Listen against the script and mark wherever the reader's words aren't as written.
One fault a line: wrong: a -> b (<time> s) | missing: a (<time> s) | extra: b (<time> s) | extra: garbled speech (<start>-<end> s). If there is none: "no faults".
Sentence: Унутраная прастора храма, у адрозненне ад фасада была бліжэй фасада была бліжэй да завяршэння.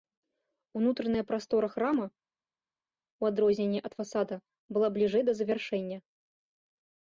missing: фасада была бліжэй (5.2 s)